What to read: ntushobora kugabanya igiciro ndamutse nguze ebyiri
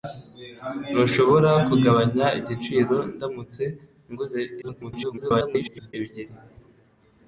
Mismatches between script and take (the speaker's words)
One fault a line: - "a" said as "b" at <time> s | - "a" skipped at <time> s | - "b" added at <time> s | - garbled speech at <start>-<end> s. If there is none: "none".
- garbled speech at 4.6-5.9 s